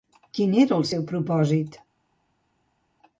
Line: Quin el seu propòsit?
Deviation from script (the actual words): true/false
true